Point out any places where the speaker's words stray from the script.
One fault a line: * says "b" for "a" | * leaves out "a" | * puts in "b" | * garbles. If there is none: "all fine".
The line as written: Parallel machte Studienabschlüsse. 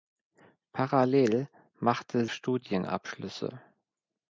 all fine